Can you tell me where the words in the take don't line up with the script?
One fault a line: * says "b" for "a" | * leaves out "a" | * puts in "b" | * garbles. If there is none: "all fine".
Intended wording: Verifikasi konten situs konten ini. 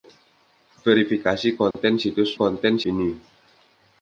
all fine